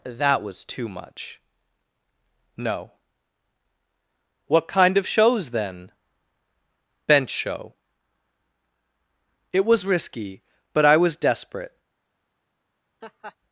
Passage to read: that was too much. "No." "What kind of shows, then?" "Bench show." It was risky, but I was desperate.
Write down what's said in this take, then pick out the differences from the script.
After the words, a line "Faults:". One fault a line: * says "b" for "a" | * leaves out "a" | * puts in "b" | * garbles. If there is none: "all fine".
that was too much. "No." "What kind of shows, then?" "Bench show." It was risky, but I was desperate.
Faults:
all fine